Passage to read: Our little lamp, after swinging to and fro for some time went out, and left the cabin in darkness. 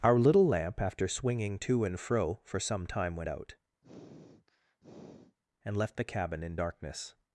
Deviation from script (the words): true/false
false